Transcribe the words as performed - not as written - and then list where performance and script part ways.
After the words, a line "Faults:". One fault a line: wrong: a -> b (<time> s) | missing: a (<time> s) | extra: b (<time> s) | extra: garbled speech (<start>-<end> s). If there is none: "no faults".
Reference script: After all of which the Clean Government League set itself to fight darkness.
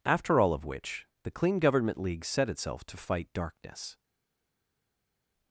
After all of which the Clean Government League set itself to fight darkness.
Faults:
no faults